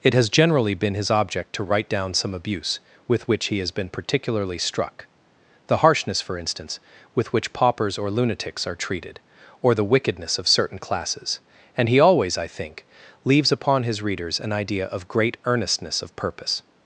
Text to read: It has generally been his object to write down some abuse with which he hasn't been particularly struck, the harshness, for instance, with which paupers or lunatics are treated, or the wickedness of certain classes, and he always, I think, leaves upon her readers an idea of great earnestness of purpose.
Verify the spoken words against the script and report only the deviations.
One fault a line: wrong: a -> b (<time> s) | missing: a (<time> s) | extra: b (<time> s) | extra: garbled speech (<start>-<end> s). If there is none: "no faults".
wrong: hasn't -> has (3.6 s)
wrong: her -> his (13.8 s)